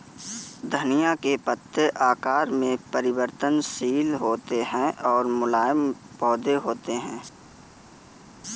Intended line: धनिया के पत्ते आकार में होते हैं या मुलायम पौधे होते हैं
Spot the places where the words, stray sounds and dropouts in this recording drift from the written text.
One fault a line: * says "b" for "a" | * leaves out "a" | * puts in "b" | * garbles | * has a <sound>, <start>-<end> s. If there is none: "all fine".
* puts in "परिवर्तनशील"
* says "और" for "या"